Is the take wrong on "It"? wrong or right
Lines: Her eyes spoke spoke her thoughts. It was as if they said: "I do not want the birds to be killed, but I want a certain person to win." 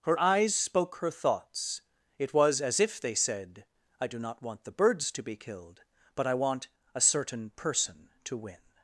right